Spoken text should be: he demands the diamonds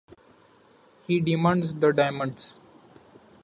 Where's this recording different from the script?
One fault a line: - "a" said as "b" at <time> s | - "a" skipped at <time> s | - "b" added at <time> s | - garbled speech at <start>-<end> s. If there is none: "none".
none